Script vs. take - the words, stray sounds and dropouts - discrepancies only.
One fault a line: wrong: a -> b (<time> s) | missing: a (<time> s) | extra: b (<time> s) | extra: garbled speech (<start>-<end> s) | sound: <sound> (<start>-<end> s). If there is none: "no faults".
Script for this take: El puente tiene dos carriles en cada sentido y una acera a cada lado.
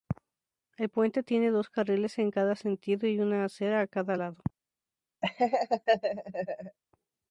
sound: laugh (5.2-6.8 s)